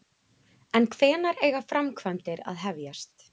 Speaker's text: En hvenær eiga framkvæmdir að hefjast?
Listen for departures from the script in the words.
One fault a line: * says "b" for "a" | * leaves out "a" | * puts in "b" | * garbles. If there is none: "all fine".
all fine